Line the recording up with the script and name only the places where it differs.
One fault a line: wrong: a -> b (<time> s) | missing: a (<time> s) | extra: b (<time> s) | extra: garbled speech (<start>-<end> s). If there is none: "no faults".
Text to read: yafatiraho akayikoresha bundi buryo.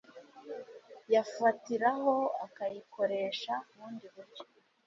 no faults